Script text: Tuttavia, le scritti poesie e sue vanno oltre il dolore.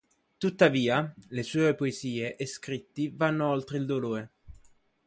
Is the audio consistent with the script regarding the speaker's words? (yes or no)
no